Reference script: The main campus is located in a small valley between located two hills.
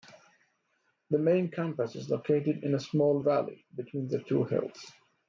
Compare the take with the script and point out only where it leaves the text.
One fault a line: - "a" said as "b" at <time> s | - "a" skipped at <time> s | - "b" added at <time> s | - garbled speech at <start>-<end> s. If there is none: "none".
- "located" said as "the" at 4.1 s